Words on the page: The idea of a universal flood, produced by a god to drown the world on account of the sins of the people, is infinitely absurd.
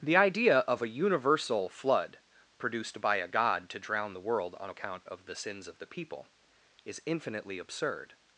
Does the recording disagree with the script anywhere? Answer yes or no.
no